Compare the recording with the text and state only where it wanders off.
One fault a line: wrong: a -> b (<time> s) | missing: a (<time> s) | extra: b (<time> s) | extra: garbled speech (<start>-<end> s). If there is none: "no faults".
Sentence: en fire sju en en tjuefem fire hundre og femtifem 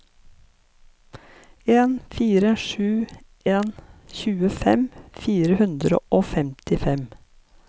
missing: en (3.7 s)